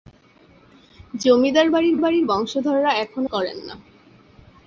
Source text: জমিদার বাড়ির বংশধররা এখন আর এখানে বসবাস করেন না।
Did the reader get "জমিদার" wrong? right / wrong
right